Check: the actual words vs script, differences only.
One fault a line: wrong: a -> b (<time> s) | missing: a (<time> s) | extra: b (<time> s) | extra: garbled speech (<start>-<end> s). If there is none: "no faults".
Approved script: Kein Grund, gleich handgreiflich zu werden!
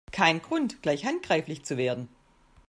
no faults